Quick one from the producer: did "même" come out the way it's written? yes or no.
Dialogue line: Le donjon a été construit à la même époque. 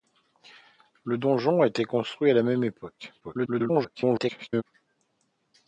yes